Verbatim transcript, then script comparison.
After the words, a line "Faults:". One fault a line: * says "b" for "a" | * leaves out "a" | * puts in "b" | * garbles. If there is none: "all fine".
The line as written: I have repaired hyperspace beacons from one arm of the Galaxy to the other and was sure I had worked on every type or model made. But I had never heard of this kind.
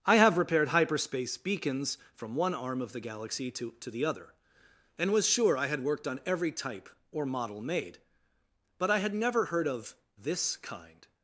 I have repaired hyperspace beacons from one arm of the Galaxy to to the other and was sure I had worked on every type or model made. But I had never heard of this kind.
Faults:
* puts in "to"